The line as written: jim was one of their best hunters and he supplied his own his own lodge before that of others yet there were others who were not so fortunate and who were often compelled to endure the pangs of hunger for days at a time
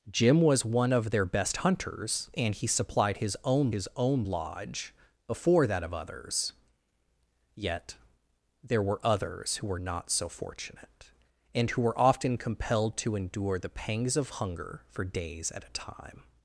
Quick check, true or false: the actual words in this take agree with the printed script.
true